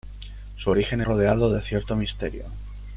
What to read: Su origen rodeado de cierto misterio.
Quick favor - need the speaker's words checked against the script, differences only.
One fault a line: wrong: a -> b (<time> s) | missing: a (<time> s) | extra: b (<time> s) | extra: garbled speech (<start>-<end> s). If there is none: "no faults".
no faults